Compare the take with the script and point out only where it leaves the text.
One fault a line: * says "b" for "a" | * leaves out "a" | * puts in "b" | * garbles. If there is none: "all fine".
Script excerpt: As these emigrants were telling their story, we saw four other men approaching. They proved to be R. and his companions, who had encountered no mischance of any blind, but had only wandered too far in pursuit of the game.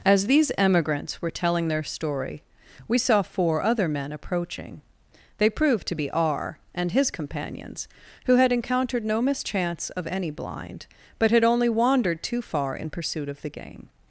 all fine